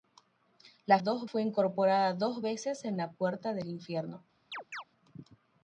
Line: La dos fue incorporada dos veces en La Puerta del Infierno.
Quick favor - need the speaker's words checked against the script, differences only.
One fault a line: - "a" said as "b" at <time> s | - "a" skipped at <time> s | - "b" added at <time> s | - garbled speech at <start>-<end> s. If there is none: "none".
none